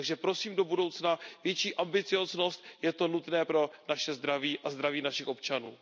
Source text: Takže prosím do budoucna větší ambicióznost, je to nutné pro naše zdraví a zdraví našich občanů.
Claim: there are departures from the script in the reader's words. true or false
false